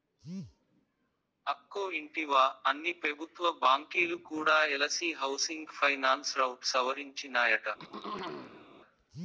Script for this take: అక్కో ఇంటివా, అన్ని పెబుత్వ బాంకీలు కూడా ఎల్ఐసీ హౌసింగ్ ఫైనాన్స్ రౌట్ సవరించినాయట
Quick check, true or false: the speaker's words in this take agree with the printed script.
true